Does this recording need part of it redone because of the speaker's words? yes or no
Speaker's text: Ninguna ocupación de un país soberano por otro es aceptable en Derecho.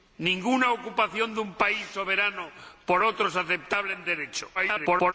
yes